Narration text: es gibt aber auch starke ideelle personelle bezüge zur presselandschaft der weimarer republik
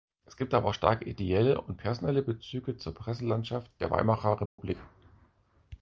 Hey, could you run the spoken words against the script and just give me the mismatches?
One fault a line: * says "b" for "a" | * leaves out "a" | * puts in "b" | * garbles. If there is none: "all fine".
* puts in "und"